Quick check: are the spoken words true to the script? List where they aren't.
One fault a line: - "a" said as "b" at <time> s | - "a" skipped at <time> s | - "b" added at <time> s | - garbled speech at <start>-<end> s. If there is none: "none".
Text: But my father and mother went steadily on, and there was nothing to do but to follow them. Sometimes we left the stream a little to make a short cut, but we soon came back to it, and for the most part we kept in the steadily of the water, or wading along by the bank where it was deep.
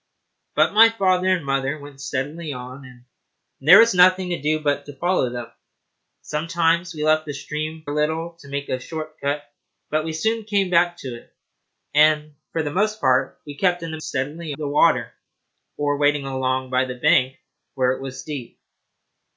none